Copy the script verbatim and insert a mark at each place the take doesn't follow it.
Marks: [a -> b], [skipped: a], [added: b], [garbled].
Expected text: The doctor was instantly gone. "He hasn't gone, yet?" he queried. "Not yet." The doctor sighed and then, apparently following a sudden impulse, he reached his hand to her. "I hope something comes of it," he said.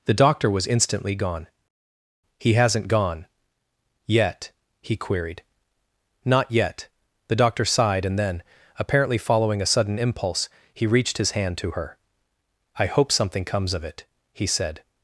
The doctor was instantly gone. "He hasn't gone, yet?" he queried. "Not yet." The doctor sighed and then, apparently following a sudden impulse, he reached his hand to her. "I hope something comes of it," he said.